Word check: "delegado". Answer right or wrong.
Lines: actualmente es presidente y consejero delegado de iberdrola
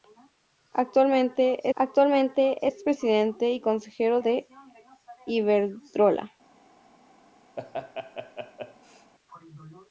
wrong